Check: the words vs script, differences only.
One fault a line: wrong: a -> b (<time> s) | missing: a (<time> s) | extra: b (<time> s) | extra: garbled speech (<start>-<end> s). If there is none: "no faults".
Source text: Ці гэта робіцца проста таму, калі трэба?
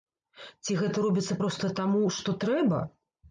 wrong: калі -> што (2.2 s)